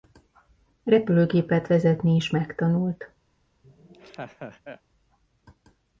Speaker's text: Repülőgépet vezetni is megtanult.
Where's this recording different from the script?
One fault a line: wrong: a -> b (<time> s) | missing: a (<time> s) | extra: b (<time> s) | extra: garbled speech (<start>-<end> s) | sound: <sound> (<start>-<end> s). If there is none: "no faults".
sound: laugh (3.6-4.8 s)